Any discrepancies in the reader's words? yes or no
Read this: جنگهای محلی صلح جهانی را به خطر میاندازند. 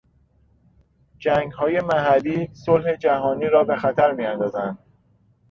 no